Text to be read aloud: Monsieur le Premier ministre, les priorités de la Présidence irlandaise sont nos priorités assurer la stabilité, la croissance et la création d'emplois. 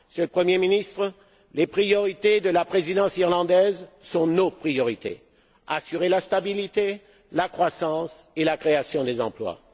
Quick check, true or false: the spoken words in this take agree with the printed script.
true